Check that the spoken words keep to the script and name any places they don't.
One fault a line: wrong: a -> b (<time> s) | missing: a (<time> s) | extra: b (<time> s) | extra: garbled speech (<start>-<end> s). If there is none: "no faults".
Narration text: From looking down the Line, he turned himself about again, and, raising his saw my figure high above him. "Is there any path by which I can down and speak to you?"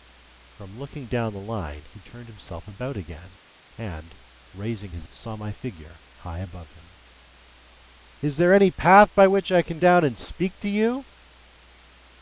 no faults